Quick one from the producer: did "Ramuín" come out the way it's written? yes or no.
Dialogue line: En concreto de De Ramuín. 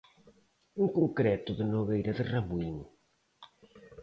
yes